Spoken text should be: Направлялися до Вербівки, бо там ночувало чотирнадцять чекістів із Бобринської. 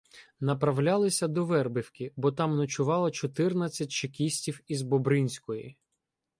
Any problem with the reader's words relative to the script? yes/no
no